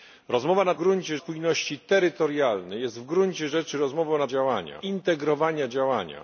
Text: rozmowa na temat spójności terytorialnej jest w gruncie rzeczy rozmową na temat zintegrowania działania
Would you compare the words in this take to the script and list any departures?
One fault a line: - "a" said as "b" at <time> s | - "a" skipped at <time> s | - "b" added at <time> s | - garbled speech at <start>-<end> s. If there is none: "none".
- "temat" said as "gruncie" at 0.7 s
- "temat" said as "działania" at 4.3 s